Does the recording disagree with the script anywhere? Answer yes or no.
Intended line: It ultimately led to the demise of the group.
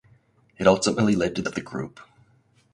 yes